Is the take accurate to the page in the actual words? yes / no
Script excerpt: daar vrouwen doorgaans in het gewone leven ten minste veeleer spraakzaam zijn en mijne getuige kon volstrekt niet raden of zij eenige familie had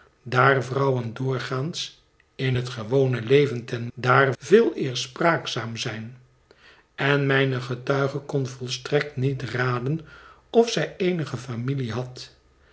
no